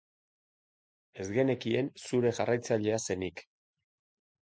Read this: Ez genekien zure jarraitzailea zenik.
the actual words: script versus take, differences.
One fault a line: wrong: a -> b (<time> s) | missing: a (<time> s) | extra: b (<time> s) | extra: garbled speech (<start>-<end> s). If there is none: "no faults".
no faults